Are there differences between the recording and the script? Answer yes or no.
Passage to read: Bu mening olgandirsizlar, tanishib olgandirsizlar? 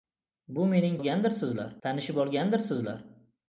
no